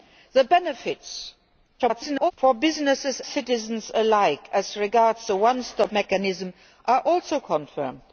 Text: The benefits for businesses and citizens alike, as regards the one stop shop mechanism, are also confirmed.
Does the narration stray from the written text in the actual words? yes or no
yes